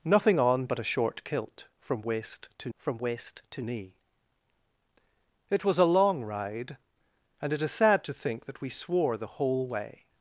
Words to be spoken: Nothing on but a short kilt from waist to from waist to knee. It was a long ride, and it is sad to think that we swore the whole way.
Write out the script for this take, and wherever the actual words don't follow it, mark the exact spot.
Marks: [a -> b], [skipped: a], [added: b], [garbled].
Nothing on but a short kilt from waist to from waist to knee. It was a long ride, and it is sad to think that we swore the whole way.